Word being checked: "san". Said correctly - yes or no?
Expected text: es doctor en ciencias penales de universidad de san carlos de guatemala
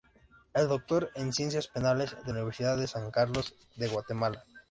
yes